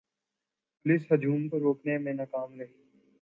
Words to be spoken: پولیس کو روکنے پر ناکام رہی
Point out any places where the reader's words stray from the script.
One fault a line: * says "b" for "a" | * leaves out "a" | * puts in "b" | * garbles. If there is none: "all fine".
* puts in "ہجوم"
* says "میں" for "پر"